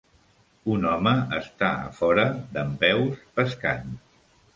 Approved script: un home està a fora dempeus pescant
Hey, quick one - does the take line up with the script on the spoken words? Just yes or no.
yes